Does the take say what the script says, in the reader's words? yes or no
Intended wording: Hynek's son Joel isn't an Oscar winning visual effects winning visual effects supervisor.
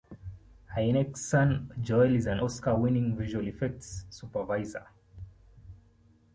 no